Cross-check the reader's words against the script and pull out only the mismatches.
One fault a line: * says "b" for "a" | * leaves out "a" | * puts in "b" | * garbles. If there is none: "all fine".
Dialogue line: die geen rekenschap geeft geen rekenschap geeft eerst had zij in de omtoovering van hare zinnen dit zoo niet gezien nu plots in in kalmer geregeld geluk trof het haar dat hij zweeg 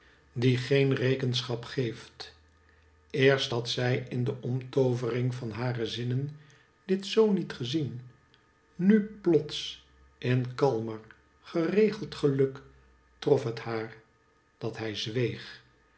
* leaves out "geen rekenschap geeft"
* leaves out "in"